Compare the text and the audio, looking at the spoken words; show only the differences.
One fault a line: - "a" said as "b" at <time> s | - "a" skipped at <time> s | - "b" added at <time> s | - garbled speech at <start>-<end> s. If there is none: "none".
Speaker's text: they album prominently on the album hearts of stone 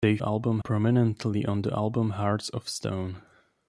none